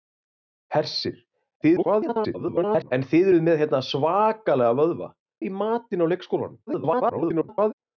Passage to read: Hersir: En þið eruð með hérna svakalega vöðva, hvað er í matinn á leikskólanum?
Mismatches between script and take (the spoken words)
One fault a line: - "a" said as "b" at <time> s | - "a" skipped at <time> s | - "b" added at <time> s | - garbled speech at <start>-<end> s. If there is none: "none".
- garbled speech at 1.6-2.9 s
- "hvað" skipped at 5.1 s
- garbled speech at 6.7-7.7 s